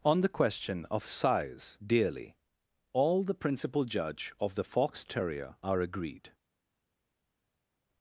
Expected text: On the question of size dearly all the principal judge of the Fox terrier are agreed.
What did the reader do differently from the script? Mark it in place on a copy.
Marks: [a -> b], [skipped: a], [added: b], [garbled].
On the question of size dearly all the principal judge of the Fox terrier are agreed.